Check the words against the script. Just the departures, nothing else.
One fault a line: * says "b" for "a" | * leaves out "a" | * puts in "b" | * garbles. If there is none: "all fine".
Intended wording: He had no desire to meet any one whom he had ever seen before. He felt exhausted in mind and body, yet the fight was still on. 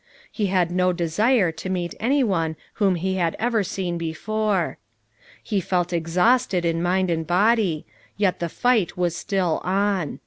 all fine